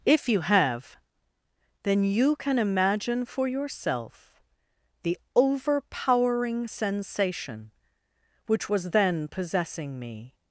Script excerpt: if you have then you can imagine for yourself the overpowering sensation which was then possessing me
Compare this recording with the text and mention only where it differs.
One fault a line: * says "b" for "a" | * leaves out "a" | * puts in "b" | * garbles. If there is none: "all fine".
all fine